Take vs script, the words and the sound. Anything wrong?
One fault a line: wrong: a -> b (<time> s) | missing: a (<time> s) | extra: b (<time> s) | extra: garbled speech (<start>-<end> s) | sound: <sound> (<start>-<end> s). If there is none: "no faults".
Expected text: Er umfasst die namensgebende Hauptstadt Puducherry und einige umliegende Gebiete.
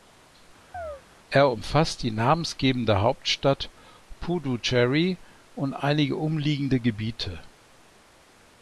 sound: chirp (0.7-1.0 s)